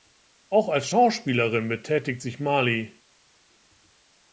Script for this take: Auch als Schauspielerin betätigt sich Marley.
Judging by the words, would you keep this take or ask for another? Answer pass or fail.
pass